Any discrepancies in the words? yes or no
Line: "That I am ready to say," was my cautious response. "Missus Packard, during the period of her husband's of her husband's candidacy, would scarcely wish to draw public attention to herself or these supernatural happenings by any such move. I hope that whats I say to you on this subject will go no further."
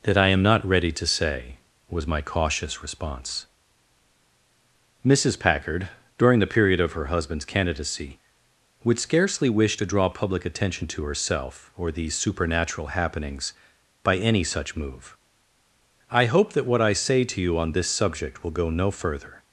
yes